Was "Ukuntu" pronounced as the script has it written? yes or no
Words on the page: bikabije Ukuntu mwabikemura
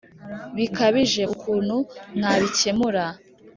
yes